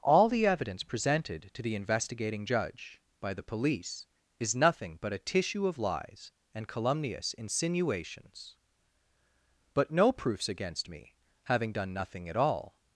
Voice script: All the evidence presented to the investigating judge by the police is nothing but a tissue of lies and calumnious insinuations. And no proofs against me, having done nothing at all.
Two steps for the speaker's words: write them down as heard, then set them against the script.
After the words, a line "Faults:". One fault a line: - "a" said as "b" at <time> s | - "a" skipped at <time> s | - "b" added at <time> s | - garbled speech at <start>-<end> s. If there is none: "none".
All the evidence presented to the investigating judge by the police is nothing but a tissue of lies and calumnious insinuations. But no proofs against me, having done nothing at all.
Faults:
- "And" said as "But" at 9.8 s